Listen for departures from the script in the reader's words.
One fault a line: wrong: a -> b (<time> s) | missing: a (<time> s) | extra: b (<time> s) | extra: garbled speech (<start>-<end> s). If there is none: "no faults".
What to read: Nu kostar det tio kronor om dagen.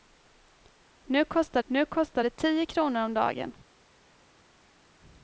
extra: nu kostar (1.6 s)